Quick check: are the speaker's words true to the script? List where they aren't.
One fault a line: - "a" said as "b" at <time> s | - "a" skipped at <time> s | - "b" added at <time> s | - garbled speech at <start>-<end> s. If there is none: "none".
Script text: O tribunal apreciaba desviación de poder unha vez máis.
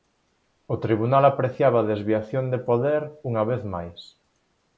none